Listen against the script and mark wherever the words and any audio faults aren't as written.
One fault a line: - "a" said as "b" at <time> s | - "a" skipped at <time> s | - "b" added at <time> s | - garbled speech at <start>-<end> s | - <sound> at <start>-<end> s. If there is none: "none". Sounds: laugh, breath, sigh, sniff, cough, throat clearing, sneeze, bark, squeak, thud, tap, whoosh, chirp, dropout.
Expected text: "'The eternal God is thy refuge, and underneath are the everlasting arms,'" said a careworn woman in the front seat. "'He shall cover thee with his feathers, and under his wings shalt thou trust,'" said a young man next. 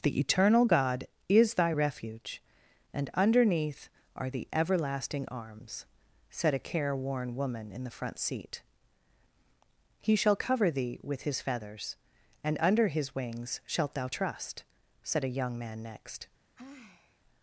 - sigh at 16.6-17.2 s